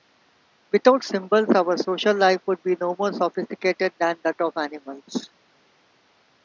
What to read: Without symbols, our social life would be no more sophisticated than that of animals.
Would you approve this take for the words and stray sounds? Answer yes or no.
yes